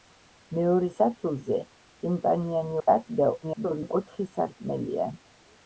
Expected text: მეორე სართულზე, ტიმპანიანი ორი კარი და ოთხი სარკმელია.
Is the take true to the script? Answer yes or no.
no